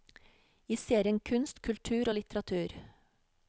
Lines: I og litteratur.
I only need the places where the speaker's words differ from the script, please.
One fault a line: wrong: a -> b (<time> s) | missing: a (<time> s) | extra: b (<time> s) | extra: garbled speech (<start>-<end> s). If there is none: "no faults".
extra: serien kunst kultur (0.8 s)